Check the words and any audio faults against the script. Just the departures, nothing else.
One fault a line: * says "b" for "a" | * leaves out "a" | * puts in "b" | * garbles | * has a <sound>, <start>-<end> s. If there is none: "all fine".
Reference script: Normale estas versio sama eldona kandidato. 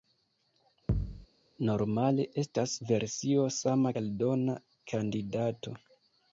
* has a thud, 0.9-1.3 s